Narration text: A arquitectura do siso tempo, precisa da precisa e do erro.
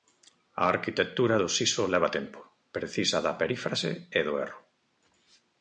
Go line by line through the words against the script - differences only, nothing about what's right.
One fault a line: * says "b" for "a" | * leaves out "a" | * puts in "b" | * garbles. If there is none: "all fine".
* puts in "leva"
* says "perífrase" for "precisa"